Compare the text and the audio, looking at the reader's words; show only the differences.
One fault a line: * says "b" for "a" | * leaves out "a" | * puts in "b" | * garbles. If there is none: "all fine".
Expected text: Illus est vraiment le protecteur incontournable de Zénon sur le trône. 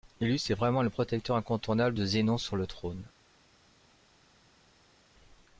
all fine